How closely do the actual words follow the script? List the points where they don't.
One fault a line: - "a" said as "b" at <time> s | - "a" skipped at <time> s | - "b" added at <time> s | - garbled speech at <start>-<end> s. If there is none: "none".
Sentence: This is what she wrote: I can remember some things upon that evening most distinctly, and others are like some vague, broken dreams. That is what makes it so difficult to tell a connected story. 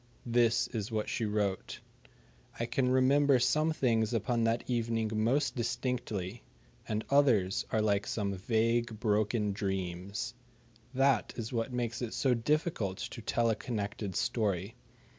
none